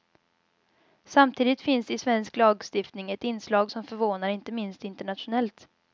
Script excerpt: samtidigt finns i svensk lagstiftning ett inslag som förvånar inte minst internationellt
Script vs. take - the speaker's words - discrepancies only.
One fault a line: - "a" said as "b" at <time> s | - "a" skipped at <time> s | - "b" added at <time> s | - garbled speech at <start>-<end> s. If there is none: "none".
none